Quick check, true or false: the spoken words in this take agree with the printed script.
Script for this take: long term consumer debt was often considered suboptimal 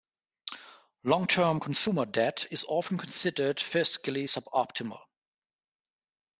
false